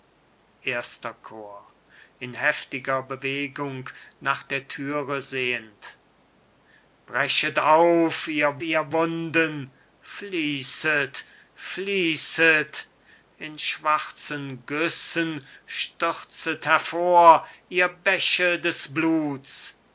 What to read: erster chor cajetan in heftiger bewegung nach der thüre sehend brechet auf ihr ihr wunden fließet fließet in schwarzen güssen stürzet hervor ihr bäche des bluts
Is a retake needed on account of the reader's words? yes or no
no